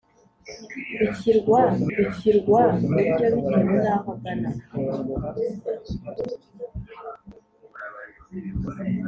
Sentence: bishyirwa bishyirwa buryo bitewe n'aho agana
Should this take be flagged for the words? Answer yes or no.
no